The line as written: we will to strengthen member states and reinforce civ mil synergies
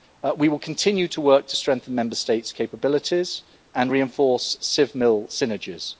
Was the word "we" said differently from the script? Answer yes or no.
no